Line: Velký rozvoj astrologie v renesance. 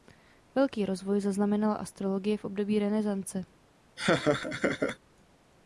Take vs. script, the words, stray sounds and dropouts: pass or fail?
fail